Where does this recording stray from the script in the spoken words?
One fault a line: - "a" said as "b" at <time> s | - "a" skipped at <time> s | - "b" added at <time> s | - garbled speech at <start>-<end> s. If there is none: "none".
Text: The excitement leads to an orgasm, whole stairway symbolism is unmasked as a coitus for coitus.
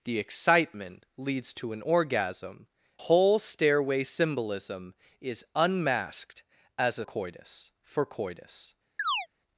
none